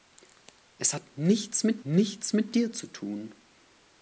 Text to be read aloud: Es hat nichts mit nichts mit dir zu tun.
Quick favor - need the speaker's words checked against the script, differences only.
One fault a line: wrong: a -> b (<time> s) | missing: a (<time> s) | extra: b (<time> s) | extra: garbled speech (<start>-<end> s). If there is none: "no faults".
no faults